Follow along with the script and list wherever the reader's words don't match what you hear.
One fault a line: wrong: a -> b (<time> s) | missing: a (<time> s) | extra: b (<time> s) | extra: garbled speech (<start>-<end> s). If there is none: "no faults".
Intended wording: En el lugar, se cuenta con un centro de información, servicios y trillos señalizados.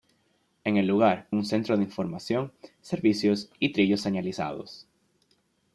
missing: se cuenta con (1.3 s)